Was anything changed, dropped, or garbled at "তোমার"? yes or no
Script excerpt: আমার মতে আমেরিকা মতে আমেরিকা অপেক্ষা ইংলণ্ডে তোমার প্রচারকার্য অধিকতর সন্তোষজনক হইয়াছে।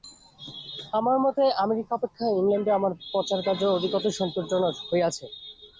yes